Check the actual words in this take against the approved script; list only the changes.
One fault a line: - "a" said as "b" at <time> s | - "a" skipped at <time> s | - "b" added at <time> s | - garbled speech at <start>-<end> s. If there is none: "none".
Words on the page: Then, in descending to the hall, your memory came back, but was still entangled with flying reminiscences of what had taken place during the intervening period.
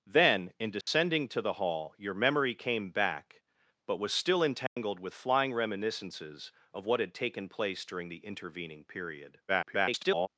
- garbled speech at 9.5-10.3 s